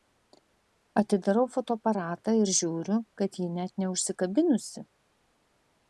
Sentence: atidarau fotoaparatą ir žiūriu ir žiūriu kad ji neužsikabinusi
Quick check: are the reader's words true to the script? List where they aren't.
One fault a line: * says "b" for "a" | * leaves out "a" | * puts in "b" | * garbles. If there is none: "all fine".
* leaves out "ir žiūriu"
* puts in "net"